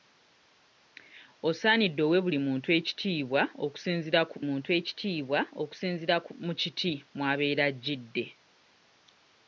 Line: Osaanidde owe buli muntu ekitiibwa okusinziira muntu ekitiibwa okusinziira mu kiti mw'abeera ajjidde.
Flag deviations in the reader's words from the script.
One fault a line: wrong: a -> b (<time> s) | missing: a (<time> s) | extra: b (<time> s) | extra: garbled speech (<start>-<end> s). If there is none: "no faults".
no faults